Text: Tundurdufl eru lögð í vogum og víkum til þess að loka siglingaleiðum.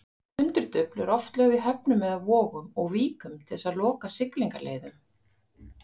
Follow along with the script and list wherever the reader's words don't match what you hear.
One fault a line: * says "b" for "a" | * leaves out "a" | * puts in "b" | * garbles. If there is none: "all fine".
* puts in "oft"
* puts in "höfnum eða"